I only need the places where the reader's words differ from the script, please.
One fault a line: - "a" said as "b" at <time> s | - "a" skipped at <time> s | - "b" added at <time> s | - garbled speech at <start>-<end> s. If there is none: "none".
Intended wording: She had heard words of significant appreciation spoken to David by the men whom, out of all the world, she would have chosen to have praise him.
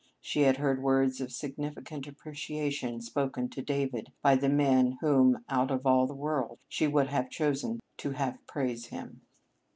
none